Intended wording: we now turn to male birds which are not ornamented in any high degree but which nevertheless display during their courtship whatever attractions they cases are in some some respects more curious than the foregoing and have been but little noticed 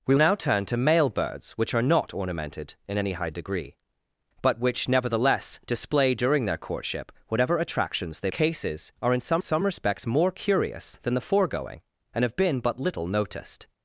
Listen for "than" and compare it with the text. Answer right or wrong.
right